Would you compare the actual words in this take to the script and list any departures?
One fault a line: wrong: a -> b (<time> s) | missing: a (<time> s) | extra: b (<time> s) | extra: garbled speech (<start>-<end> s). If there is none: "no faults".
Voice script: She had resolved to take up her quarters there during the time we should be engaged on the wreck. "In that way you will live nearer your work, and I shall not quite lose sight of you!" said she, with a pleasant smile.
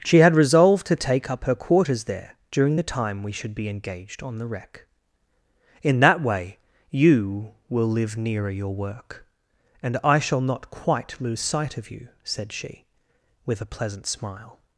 no faults